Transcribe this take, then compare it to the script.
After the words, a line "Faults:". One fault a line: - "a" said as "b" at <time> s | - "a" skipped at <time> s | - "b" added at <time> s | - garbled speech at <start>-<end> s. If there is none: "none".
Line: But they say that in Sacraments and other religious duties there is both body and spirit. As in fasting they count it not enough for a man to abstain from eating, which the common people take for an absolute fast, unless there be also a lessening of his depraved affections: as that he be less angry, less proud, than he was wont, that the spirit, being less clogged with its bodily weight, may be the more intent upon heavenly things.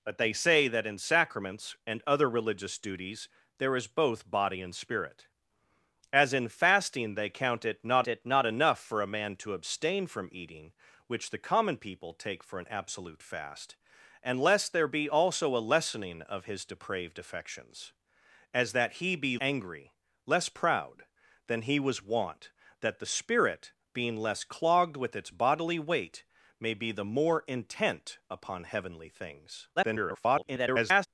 But they say that in Sacraments and other religious duties there is both body and spirit. As in fasting they count it not it not enough for a man to abstain from eating, which the common people take for an absolute fast, unless there be also a lessening of his depraved affections: as that he be angry, less proud, than he was wont, that the spirit, being less clogged with its bodily weight, may be the more intent upon heavenly things. [garbled]
Faults:
- "it not" added at 8.1 s
- "less" skipped at 19.4 s
- garbled speech at 29.8-31.1 s